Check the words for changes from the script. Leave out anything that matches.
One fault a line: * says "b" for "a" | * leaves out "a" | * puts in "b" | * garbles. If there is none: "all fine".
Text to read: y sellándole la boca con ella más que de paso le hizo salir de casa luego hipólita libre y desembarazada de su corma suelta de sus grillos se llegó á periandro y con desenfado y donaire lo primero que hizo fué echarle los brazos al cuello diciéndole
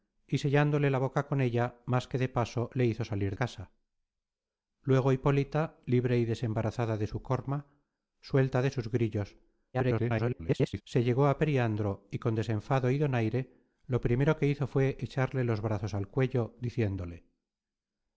* leaves out "de"
* garbles